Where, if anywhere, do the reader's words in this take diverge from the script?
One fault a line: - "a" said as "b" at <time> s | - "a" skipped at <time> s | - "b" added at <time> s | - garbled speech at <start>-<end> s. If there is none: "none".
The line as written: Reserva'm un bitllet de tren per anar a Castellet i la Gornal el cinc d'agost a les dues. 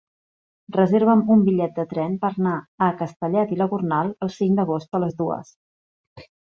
none